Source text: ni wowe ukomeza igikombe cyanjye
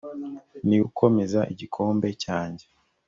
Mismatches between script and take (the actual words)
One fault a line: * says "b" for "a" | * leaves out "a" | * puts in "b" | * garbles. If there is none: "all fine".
* leaves out "wowe"